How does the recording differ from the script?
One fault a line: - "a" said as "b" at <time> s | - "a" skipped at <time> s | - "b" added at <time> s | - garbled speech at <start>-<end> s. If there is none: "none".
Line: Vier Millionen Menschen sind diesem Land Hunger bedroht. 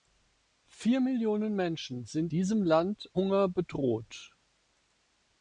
none